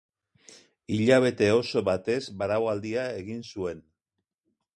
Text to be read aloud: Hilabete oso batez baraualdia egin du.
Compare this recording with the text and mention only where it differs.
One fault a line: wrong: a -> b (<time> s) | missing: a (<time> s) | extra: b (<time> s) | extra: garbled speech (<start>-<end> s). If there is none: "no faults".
wrong: du -> zuen (3.5 s)